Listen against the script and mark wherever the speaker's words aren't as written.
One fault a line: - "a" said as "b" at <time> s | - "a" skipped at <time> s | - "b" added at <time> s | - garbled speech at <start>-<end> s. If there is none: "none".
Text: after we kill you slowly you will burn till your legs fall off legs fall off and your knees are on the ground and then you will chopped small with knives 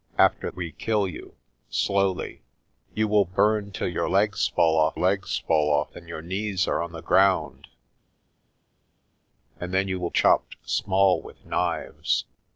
none